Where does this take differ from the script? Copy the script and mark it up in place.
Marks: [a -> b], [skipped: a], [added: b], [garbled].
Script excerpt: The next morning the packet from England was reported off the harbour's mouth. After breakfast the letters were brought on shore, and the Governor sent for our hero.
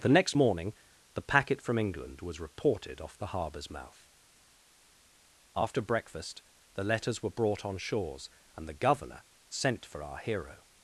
The next morning the packet from England was reported off the harbour's mouth. After breakfast the letters were brought on [shore, -> shores] and the Governor sent for our hero.